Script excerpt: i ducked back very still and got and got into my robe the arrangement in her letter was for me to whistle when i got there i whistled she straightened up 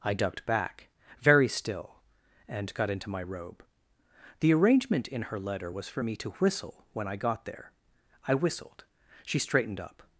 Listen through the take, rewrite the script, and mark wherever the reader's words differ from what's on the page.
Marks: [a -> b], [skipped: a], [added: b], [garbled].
i ducked back very still and got [skipped: and got] into my robe the arrangement in her letter was for me to whistle when i got there i whistled she straightened up